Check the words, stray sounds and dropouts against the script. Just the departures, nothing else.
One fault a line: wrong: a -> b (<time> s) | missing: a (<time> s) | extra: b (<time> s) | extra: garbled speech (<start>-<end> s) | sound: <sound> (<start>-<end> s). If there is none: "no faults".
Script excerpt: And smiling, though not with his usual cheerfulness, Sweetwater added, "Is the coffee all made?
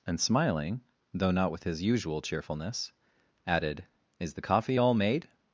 missing: Sweetwater (2.9 s)